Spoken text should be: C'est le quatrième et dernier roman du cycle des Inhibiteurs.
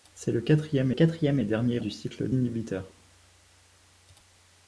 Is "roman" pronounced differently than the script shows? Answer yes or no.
yes